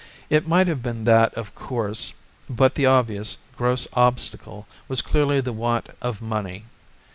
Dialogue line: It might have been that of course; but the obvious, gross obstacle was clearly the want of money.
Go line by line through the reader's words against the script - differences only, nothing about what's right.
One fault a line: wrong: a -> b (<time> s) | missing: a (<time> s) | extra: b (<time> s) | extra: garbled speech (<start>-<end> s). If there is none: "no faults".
no faults